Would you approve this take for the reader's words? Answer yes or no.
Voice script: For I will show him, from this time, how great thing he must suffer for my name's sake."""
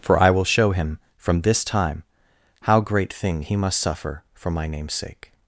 yes